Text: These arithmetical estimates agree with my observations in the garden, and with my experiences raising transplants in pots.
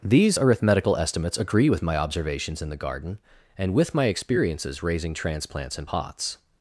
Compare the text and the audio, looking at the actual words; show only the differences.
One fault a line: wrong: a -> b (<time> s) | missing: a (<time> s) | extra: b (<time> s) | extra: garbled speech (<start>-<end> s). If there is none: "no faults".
no faults